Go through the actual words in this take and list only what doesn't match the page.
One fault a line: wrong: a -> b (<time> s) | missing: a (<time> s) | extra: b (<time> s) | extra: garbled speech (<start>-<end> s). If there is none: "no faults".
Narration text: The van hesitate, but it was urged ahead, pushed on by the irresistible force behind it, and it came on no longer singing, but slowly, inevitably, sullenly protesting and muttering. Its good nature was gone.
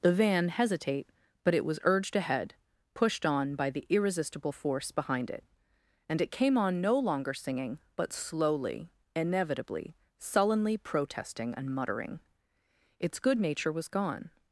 no faults